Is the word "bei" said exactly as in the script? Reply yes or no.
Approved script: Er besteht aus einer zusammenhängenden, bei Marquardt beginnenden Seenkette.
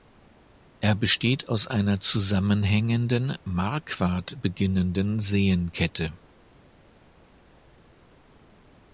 no